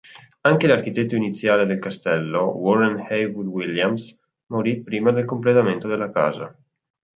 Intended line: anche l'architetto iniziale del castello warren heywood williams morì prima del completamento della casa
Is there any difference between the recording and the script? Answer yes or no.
no